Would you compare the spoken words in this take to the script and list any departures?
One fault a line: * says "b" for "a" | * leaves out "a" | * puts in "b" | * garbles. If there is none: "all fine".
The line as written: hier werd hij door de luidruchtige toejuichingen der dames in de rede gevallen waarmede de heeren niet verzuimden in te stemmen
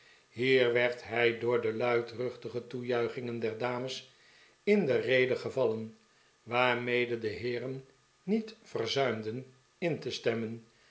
all fine